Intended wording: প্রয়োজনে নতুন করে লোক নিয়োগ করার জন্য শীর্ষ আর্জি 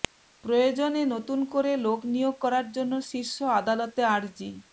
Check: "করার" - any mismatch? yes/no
no